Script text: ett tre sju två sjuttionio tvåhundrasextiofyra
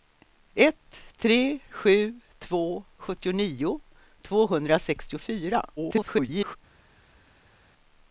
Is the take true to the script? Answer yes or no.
no